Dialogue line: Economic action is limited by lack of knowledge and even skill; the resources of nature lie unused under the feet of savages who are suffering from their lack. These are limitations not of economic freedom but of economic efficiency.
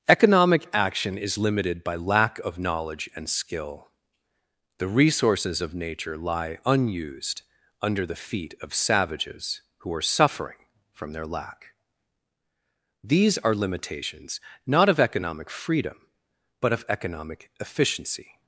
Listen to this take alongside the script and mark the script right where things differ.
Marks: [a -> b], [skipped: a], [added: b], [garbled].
Economic action is limited by lack of knowledge and [skipped: even] skill; the resources of nature lie unused under the feet of savages who are suffering from their lack. These are limitations not of economic freedom but of economic efficiency.